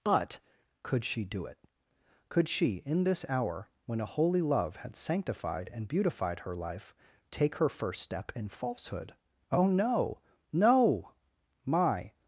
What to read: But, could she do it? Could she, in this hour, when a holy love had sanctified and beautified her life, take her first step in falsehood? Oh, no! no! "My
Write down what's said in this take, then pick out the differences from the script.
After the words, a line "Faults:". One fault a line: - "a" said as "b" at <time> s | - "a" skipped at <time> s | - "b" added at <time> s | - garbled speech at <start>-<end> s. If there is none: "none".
But, could she do it? Could she, in this hour, when a holy love had sanctified and beautified her life, take her first step in falsehood? Oh, no! no! "My
Faults:
none